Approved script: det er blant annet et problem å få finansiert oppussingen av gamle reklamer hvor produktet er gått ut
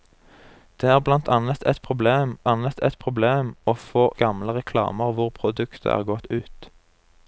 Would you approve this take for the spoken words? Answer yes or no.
no